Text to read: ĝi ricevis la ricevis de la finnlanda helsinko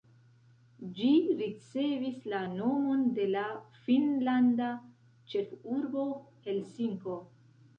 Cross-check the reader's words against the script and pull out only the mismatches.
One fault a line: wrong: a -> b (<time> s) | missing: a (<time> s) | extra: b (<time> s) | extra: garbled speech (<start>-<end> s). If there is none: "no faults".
wrong: ricevis -> nomon (2.5 s)
extra: ĉefurbo (5.4 s)